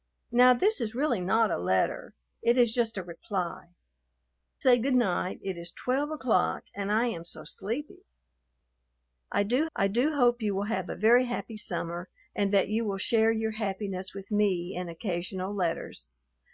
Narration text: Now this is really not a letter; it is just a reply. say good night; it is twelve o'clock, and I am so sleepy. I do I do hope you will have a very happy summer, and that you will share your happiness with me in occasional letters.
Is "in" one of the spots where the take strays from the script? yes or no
no